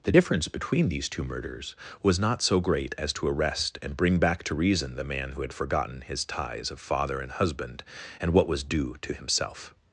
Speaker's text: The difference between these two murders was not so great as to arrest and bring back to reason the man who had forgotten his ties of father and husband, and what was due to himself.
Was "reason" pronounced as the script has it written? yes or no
yes